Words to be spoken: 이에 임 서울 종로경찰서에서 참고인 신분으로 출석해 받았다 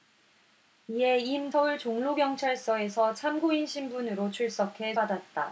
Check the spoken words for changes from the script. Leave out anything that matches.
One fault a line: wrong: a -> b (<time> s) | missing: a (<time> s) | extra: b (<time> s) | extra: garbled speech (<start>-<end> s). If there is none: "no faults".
no faults